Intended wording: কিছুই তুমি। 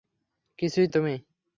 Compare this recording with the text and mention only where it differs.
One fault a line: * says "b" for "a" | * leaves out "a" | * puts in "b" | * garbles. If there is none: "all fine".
all fine